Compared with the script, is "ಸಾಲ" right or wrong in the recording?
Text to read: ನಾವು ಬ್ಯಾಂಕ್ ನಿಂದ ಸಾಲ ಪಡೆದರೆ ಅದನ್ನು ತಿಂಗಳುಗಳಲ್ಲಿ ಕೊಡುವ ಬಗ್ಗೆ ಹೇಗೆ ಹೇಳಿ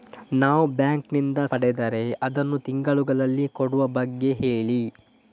wrong